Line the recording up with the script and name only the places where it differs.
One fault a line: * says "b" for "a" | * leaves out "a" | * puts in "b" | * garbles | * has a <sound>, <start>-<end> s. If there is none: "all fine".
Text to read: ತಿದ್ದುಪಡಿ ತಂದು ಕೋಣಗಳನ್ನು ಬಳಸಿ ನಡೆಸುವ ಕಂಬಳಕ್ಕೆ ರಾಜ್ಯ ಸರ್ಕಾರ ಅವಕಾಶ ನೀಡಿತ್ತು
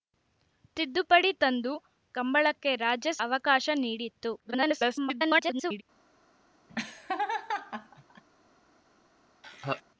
* leaves out "ಕೋಣಗಳನ್ನು ಬಳಸಿ ನಡೆಸುವ"
* leaves out "ಸರ್ಕಾರ"
* garbles
* has a laugh, 6.7-8.2 s
* has a laugh, 9.4-9.8 s